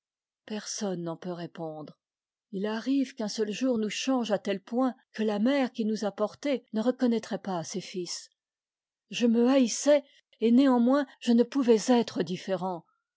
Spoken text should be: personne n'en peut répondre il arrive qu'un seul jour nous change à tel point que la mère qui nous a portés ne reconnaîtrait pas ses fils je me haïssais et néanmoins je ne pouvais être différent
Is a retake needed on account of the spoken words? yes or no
no